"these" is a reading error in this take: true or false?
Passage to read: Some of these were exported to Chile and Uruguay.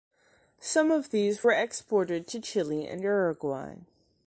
false